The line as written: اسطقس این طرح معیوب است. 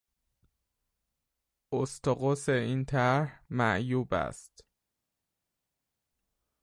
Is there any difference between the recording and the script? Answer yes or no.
no